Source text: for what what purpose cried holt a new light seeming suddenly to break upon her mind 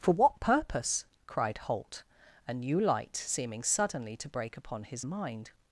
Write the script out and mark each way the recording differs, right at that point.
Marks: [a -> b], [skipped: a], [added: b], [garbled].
for what [skipped: what] purpose cried holt a new light seeming suddenly to break upon [her -> his] mind